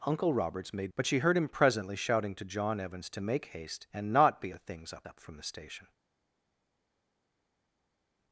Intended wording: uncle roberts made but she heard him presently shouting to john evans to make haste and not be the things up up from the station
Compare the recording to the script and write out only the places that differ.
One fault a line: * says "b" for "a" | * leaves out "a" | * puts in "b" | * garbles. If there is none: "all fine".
all fine